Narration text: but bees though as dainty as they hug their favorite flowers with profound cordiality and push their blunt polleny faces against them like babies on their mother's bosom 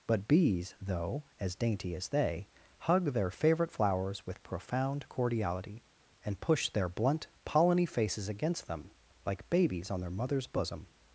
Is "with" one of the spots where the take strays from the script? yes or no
no